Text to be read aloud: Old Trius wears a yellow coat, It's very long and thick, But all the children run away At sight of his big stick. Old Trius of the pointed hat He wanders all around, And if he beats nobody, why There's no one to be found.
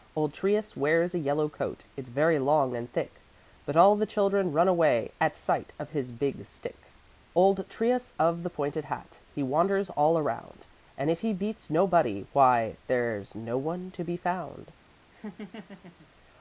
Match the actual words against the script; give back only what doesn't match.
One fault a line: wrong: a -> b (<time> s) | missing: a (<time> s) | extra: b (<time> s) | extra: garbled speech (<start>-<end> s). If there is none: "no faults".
no faults